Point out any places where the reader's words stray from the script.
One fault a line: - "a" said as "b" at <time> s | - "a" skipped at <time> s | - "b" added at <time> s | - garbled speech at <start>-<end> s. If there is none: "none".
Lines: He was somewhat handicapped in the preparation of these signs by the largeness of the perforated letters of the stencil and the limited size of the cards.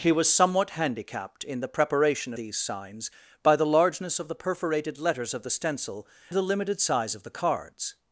- "of" skipped at 2.3 s
- "and" skipped at 6.1 s